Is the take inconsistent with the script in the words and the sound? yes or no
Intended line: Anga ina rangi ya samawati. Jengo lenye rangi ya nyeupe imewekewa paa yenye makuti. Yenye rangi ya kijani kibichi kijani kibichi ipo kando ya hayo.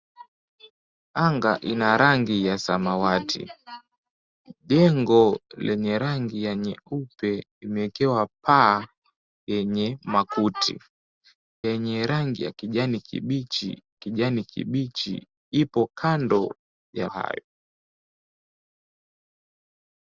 no